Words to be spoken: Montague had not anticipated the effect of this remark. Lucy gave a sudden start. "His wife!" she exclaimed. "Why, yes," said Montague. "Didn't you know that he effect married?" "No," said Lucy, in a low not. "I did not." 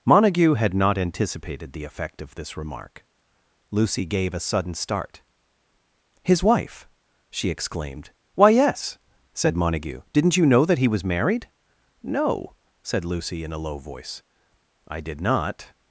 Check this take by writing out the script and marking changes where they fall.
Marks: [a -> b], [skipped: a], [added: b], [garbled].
Montague had not anticipated the effect of this remark. Lucy gave a sudden start. "His wife!" she exclaimed. "Why, yes," said Montague. "Didn't you know that he [effect -> was] married?" "No," said Lucy, in a low [not. -> voice] "I did not."